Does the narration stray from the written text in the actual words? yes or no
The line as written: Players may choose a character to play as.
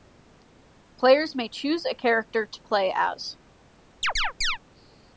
no